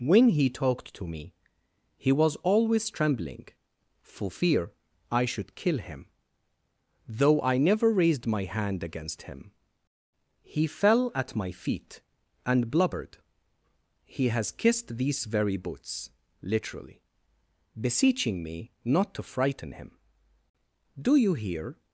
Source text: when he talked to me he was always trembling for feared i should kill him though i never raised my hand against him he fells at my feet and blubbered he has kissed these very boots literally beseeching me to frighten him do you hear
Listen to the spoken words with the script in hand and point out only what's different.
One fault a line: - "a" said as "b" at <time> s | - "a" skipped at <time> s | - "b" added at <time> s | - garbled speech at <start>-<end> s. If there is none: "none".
- "feared" said as "fear" at 4.3 s
- "fells" said as "fell" at 10.7 s
- "not" added at 18.7 s